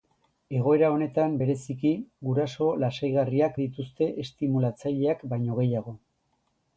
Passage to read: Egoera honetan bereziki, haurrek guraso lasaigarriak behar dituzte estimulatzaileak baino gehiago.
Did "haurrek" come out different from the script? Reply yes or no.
yes